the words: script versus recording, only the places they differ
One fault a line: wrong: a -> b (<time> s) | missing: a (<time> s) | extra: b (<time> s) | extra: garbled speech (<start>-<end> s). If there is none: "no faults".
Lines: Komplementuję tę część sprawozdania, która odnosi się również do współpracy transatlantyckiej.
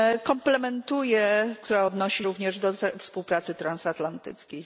missing: tę część sprawozdania (1.6 s)
missing: się (2.3 s)